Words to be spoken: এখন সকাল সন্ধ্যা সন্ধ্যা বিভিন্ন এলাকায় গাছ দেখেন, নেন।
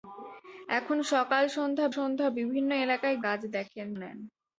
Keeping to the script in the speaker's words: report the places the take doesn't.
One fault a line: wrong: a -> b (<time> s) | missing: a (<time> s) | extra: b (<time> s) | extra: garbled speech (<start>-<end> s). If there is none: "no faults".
no faults